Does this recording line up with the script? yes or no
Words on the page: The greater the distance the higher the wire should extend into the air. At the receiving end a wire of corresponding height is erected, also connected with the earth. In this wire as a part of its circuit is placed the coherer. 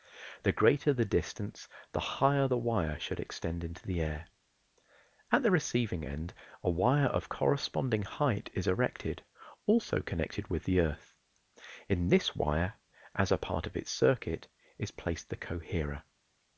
yes